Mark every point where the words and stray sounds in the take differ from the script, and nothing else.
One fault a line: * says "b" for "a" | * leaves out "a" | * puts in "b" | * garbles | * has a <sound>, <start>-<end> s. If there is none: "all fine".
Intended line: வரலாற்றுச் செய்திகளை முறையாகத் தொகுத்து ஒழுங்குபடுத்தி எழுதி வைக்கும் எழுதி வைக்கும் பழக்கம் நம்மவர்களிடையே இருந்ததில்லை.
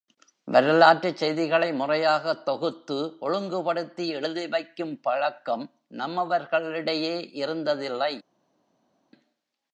* leaves out "எழுதி வைக்கும்"